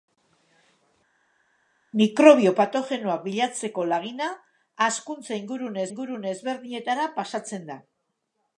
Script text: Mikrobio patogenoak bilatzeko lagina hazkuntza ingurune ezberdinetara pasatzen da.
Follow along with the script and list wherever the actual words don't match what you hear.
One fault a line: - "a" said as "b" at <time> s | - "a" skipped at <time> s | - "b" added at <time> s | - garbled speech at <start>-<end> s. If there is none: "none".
- "ingurune" added at 5.9 s